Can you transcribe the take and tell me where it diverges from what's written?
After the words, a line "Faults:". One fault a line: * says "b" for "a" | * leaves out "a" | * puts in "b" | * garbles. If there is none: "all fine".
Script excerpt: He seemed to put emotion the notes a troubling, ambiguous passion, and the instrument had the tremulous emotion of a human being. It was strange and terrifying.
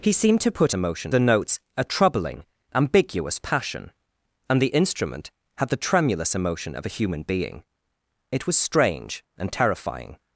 He seemed to put emotion the notes a troubling, ambiguous passion, and the instrument had the tremulous emotion of a human being. It was strange and terrifying.
Faults:
all fine